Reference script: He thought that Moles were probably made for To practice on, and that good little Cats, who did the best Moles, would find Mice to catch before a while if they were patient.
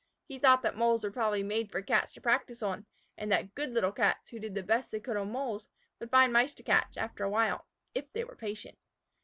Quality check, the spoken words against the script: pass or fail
fail